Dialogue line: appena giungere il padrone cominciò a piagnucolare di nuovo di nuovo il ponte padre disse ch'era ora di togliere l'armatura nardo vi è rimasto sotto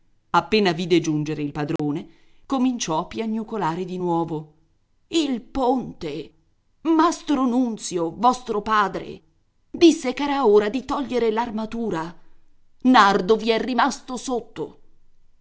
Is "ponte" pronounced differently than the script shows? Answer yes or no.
yes